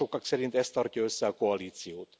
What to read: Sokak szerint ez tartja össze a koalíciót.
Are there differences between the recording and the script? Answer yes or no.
no